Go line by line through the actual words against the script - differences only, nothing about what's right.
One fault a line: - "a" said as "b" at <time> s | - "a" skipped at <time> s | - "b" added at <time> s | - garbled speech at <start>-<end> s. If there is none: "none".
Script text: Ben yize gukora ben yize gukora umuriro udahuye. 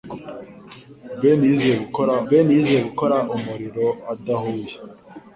none